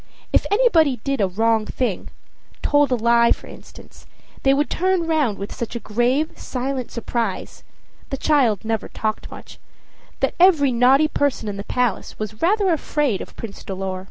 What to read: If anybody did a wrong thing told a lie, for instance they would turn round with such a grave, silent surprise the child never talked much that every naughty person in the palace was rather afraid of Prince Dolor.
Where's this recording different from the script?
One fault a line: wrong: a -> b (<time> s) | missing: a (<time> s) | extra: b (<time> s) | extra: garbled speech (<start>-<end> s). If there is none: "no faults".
no faults